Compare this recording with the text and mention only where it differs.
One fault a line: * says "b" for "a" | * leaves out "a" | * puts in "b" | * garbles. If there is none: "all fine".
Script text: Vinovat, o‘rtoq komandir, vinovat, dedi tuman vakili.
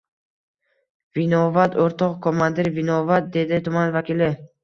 all fine